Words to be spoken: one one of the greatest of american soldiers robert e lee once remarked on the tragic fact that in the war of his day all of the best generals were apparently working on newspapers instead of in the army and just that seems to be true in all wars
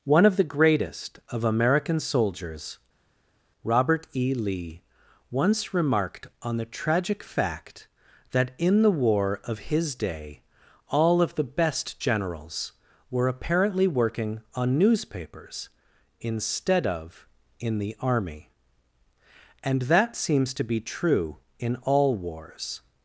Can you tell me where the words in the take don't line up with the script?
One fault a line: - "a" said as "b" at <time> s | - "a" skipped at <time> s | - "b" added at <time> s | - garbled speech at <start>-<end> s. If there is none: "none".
- "one" skipped at 0.3 s
- "just" skipped at 19.8 s